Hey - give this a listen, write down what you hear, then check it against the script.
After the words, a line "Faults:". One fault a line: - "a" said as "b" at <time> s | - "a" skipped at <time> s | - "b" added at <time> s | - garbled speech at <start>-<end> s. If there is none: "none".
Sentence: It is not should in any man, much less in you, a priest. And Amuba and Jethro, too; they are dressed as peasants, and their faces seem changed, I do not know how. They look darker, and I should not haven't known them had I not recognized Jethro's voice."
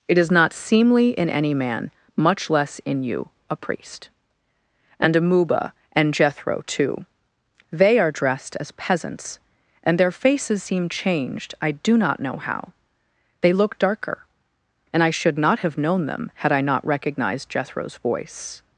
It is not seemly in any man, much less in you, a priest. And Amuba and Jethro, too; they are dressed as peasants, and their faces seem changed, I do not know how. They look darker, and I should not have known them had I not recognized Jethro's voice."
Faults:
- "should" said as "seemly" at 0.5 s
- "haven't" said as "have" at 15.6 s